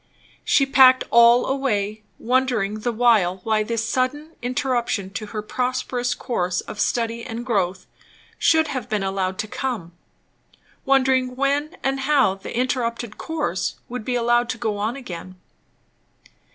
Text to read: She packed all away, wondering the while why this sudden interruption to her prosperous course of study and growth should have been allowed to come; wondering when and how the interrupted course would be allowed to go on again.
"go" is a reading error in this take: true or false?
false